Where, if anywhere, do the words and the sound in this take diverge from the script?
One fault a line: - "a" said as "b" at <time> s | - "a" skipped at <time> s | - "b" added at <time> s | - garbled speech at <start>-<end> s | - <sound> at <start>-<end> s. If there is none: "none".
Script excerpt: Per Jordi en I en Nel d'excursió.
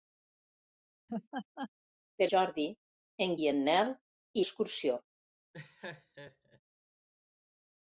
- laugh at 1.1-1.7 s
- laugh at 5.5-6.6 s